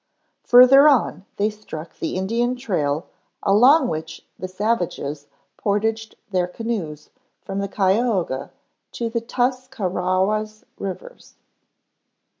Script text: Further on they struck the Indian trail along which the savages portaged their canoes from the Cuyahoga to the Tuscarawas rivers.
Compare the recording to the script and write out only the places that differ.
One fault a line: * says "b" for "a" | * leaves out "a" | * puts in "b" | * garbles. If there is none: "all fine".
all fine